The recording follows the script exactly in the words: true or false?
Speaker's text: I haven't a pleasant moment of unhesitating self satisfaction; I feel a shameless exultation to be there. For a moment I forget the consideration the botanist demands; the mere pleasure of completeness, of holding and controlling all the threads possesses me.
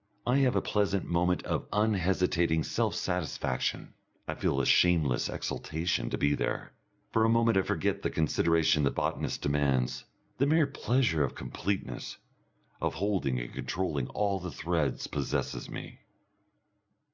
false